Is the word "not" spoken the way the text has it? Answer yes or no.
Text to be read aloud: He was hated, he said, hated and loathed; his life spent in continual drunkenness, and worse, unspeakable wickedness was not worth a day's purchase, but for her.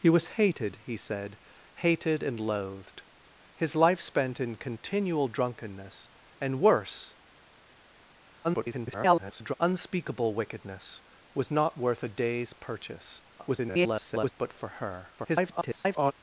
yes